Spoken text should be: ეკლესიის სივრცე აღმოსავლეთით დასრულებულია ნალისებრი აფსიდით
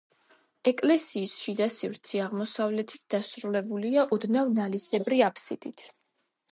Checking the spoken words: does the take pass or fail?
fail